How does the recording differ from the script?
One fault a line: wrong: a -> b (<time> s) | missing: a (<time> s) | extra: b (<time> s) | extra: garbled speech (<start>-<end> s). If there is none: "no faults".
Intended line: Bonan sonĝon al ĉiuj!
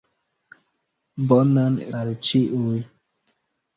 missing: sonĝon (1.8 s)